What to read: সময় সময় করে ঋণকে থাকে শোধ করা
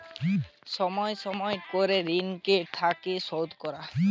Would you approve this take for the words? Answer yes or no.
yes